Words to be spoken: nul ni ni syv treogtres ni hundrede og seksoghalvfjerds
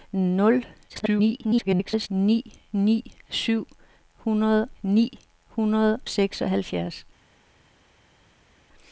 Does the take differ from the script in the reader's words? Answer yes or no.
yes